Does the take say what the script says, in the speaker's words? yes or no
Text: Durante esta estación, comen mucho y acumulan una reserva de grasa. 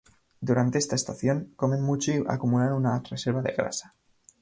yes